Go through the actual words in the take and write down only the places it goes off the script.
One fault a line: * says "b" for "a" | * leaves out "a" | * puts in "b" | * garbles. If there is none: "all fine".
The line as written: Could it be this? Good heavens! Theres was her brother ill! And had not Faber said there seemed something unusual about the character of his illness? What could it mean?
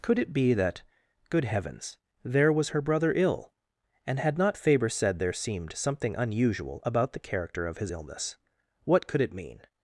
* says "that" for "this"
* says "There" for "Theres"